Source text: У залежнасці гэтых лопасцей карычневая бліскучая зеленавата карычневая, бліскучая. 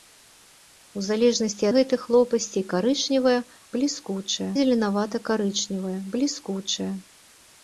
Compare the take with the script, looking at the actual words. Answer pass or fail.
pass